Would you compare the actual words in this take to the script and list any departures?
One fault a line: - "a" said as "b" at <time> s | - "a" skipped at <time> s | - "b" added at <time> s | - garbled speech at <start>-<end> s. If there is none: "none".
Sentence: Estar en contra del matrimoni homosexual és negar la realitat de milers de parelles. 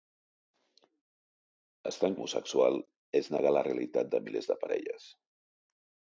- "contra del matrimoni" skipped at 2.1 s